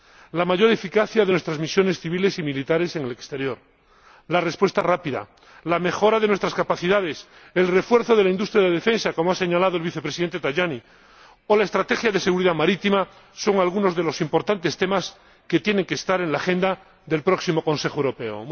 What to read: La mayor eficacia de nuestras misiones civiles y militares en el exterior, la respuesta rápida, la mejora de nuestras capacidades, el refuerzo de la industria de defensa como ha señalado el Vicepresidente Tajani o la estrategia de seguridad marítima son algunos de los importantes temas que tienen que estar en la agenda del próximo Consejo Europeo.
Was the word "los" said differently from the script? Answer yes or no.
no